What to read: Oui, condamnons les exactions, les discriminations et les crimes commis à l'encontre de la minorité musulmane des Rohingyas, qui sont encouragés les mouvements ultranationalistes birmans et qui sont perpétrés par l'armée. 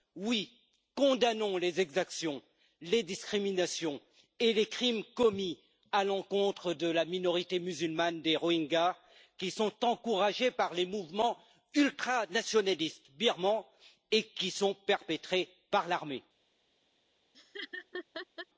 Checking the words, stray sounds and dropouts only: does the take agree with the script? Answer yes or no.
no